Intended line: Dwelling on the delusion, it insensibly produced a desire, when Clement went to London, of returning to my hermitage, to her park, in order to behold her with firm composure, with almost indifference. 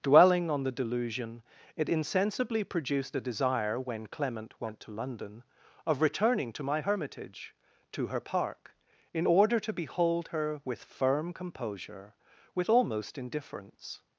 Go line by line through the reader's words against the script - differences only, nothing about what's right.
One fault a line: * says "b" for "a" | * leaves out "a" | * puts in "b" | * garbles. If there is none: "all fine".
all fine